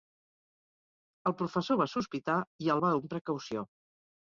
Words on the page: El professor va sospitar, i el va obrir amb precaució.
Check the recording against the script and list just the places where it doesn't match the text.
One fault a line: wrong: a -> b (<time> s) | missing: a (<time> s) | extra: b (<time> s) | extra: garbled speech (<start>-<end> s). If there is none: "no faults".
missing: obrir (3.0 s)